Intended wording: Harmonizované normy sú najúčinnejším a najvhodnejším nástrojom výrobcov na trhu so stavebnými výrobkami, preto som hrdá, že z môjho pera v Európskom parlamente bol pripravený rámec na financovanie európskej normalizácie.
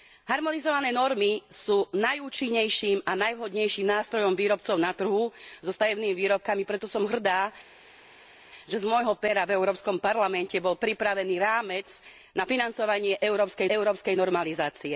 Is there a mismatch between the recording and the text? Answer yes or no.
yes